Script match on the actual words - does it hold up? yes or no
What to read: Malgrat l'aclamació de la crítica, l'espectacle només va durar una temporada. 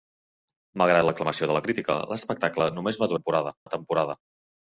no